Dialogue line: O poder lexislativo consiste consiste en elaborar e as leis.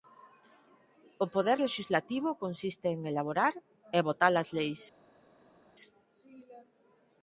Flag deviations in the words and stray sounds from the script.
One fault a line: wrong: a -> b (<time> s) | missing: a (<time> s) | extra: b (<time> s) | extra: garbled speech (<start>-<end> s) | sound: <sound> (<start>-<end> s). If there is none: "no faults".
missing: consiste (2.9 s)
extra: votar (4.1 s)